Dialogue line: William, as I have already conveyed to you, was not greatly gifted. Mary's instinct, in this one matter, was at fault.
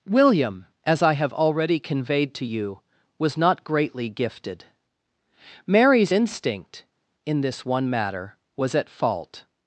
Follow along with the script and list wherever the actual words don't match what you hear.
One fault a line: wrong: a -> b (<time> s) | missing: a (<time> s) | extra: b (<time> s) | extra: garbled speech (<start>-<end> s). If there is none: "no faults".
no faults